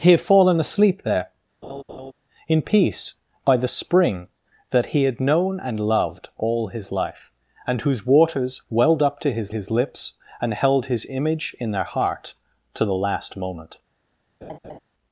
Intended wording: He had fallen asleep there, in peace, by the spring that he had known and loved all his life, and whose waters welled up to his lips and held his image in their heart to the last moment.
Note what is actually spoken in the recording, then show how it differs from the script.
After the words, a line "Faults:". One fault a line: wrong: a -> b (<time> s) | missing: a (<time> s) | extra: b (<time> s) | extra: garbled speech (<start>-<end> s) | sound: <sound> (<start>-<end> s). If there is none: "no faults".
He had fallen asleep there, in peace, by the spring that he had known and loved all his life, and whose waters welled up to his his lips and held his image in their heart to the last moment.
Faults:
sound: laugh (1.6-2.1 s)
extra: his (9.5 s)
sound: laugh (14.4-14.8 s)